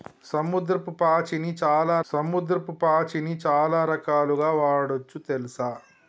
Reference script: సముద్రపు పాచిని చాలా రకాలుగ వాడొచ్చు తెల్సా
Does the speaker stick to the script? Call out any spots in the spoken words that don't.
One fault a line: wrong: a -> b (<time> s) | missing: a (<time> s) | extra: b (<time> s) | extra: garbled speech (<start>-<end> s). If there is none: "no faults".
extra: సముద్రపు పాచిని చాలా (2.0 s)